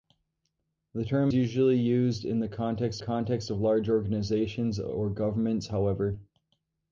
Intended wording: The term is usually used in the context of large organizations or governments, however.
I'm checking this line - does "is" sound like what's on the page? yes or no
no